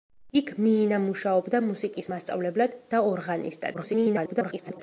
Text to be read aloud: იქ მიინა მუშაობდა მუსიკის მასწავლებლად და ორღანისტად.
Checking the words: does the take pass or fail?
fail